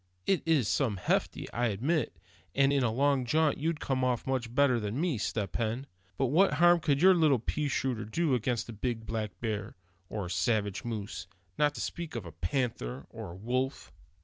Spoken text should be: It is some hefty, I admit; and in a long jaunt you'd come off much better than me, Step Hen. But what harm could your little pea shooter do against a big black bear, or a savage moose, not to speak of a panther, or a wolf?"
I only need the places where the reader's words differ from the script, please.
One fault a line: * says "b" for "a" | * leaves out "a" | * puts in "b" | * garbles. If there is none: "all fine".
all fine